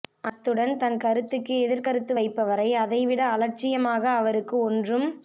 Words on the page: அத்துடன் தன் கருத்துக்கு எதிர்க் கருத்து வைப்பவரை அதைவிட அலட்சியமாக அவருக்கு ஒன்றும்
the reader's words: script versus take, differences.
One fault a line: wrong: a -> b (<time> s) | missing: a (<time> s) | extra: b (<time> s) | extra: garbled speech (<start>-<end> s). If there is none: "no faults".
no faults